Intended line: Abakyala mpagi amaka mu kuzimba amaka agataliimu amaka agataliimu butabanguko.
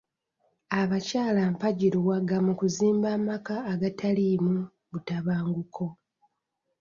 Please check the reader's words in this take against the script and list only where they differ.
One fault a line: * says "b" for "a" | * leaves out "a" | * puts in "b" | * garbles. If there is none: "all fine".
* says "luwaga" for "amaka"
* leaves out "amaka agataliimu"